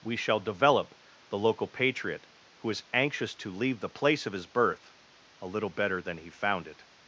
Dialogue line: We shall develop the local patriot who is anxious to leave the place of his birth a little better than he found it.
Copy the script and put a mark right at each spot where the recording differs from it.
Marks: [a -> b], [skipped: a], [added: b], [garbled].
We shall develop the local patriot who is anxious to leave the place of his birth a little better than he found it.